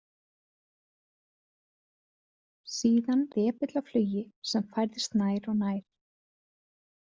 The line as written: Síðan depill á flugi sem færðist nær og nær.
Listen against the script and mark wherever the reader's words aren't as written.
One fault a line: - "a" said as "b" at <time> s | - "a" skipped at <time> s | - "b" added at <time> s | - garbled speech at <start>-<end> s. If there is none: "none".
none